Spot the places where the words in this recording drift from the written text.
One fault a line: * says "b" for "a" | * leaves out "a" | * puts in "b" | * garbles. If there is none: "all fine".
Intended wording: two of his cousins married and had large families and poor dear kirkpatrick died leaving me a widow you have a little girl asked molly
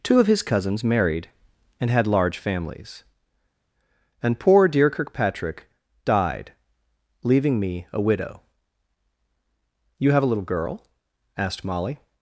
all fine